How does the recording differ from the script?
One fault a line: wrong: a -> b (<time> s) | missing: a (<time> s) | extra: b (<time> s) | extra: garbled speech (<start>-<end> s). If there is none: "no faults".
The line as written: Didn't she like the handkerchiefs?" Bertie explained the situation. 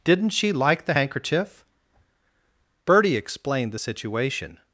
wrong: handkerchiefs -> handkerchief (0.9 s)